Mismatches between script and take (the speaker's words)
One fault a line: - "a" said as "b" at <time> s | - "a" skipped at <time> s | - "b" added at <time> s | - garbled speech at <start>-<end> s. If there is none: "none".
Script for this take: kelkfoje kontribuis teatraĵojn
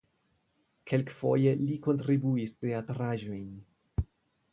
- "li" added at 1.6 s